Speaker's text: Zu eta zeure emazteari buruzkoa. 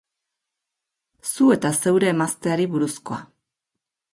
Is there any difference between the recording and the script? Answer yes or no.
no